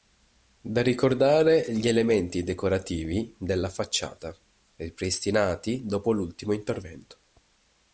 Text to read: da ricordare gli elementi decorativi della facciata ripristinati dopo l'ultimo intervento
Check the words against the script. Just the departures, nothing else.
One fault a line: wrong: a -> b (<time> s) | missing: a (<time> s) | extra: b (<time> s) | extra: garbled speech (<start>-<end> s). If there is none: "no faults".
no faults